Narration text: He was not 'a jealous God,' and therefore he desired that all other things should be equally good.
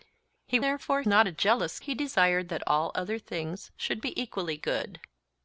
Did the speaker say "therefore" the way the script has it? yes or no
no